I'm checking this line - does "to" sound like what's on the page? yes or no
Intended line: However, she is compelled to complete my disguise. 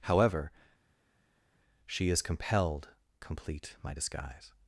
no